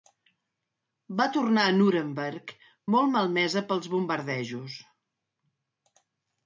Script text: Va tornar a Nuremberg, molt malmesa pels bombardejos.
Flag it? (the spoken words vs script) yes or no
no